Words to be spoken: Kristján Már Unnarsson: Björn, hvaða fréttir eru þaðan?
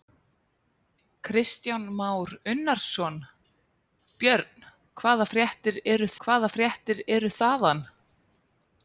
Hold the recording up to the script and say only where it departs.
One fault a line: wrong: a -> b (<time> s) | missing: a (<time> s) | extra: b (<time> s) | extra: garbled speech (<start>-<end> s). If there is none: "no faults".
extra: hvaða fréttir eru (6.2 s)